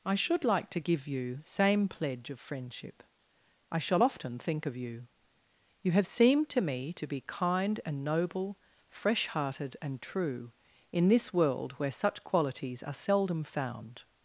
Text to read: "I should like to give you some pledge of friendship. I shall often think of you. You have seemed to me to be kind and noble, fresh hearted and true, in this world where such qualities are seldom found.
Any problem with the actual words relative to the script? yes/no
yes